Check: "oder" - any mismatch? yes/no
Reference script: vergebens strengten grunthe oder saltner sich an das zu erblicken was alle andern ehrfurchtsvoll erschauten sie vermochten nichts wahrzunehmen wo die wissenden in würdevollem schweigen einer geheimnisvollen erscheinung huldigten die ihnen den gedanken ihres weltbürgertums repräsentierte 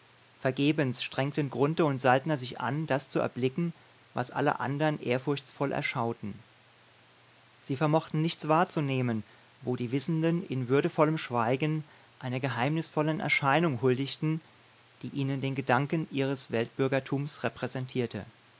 yes